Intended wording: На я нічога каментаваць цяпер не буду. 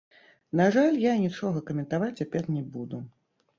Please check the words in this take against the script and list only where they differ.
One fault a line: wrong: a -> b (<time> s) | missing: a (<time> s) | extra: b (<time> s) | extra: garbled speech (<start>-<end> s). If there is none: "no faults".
extra: жаль (0.7 s)